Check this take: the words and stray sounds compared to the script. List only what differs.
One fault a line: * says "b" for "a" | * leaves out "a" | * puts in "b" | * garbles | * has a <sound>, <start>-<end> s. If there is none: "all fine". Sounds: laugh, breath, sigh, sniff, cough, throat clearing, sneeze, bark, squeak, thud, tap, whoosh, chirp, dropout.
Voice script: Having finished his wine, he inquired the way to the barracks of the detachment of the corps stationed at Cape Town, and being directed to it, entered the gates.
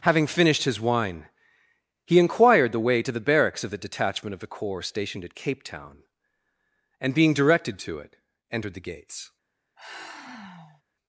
* has a sigh, 9.8-10.8 s